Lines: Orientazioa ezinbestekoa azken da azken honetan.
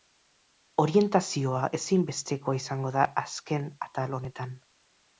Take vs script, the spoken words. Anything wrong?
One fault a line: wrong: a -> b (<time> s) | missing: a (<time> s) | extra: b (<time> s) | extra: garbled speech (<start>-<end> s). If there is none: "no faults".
wrong: azken -> izango (2.6 s)
extra: atal (3.9 s)